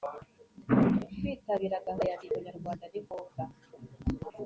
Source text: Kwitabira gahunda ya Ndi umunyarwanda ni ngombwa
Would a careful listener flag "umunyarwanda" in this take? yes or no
no